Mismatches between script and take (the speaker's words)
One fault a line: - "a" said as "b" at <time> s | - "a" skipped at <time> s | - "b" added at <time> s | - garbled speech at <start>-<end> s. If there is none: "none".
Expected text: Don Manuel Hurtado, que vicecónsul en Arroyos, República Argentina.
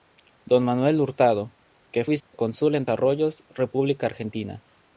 none